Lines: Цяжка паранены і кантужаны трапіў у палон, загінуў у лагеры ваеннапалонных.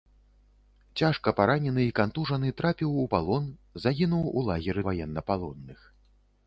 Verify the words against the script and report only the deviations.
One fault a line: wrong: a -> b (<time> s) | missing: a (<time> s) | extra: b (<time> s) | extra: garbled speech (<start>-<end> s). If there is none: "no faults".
no faults